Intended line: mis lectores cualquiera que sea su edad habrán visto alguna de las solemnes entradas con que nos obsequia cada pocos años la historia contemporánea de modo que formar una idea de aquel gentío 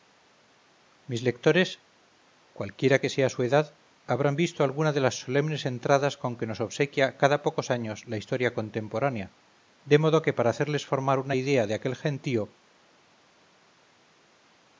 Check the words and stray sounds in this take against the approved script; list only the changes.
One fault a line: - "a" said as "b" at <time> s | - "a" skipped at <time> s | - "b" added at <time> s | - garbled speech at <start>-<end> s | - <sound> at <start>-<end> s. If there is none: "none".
- "para hacerles" added at 10.3 s